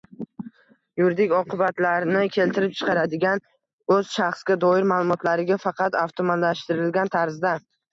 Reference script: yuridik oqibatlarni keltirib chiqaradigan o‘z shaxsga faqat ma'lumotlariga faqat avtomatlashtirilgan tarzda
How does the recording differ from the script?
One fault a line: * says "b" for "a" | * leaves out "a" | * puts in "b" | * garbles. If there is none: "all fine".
* says "doir" for "faqat"